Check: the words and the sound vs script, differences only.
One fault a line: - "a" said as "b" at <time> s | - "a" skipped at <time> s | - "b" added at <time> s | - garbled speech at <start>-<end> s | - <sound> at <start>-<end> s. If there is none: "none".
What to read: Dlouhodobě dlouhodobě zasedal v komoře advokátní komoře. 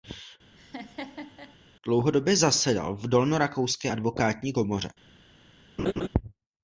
- laugh at 0.6-1.6 s
- "dlouhodobě" skipped at 2.4 s
- "komoře" said as "dolnorakouské" at 3.1 s
- laugh at 5.8-6.1 s